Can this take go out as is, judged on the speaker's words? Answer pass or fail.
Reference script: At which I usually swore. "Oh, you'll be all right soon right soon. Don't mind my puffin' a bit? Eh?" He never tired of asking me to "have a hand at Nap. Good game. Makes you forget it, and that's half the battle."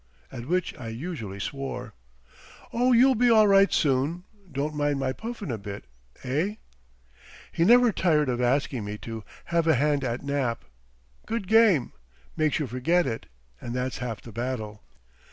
fail